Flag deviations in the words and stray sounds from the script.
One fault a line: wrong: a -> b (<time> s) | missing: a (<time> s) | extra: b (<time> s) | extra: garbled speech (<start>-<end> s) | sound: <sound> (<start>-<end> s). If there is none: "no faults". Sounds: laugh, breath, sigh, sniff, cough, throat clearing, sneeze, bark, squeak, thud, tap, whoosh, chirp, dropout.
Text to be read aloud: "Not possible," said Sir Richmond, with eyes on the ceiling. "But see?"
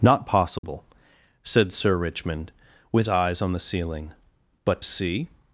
sound: dropout (0.6-0.6 s)